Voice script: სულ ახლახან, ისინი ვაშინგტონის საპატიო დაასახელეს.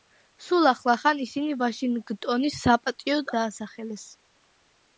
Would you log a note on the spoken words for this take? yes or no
no